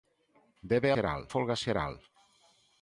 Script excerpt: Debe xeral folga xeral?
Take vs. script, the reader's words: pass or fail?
pass